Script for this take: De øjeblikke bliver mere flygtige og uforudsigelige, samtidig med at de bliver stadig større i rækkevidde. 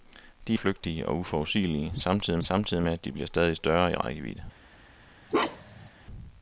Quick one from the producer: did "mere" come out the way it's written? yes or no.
no